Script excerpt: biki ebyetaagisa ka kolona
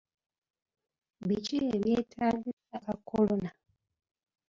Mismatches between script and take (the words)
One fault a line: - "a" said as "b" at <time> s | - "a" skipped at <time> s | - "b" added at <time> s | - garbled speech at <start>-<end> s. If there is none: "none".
none